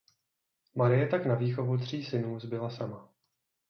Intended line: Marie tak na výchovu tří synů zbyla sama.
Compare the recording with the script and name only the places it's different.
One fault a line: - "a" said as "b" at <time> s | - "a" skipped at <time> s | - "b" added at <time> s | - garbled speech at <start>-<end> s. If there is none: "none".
none